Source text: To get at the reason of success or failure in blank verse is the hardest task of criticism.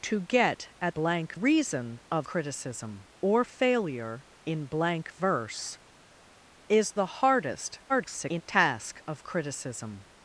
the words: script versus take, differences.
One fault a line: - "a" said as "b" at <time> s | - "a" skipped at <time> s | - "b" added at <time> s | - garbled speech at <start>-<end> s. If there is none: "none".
- "the" said as "blank" at 0.9 s
- "success" said as "criticism" at 2.2 s
- garbled speech at 7.9-8.4 s